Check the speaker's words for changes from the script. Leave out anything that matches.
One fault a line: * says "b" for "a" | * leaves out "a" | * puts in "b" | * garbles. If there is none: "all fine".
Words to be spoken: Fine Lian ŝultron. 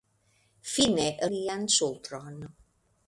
all fine